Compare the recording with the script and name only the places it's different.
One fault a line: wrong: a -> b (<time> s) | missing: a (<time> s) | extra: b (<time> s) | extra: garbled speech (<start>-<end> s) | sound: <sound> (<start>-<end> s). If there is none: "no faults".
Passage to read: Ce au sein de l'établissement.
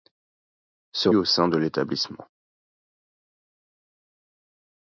no faults